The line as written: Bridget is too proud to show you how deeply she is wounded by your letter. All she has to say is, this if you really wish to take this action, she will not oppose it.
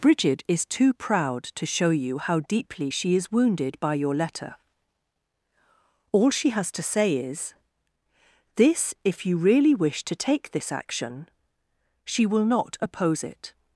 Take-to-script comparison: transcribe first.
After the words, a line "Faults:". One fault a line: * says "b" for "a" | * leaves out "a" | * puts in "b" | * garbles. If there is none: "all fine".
Bridget is too proud to show you how deeply she is wounded by your letter. All she has to say is, this if you really wish to take this action, she will not oppose it.
Faults:
all fine